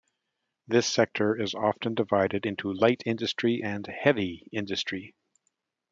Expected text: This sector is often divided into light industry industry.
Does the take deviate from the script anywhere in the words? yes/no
yes